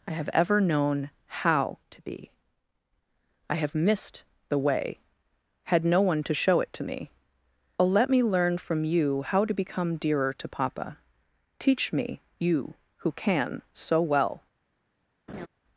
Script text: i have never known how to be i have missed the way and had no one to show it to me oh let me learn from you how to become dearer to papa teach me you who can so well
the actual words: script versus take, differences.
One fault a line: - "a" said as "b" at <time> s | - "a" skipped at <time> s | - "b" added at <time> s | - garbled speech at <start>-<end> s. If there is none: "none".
- "never" said as "ever" at 0.3 s
- "and" skipped at 5.0 s